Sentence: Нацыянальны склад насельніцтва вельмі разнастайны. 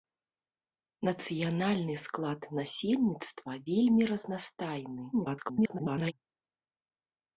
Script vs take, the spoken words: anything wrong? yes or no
yes